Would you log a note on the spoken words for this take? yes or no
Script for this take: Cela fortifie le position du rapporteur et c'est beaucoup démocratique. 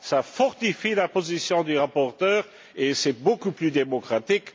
yes